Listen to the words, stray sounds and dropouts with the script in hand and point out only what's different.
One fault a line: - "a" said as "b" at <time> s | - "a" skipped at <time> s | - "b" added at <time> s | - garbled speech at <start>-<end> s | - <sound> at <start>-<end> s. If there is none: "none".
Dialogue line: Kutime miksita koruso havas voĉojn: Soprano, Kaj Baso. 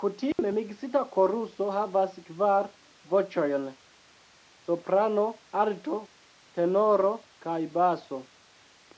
- dropout at 0.3-0.4 s
- "kvar" added at 2.3 s
- "Alto Tenoro" added at 5.6 s